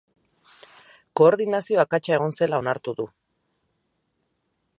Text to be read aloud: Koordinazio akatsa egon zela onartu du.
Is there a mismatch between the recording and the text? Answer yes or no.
no